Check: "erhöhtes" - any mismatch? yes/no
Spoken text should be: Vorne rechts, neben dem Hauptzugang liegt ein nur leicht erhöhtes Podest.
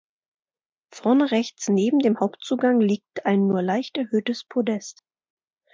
no